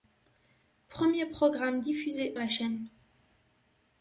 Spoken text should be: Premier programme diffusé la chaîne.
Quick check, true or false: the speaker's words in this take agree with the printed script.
true